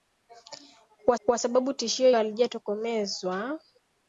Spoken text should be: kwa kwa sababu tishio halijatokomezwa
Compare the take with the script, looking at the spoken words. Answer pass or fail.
pass